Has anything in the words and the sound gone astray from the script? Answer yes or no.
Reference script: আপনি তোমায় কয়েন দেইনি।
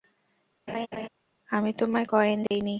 yes